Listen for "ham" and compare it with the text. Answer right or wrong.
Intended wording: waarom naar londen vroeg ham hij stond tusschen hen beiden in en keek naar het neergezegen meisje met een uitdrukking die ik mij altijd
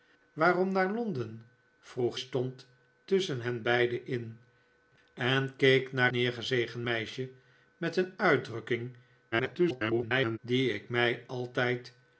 wrong